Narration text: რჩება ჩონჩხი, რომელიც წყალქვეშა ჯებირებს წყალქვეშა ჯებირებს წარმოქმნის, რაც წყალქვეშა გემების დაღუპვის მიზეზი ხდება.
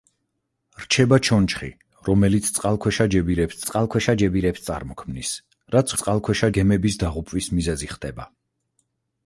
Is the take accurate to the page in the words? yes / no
yes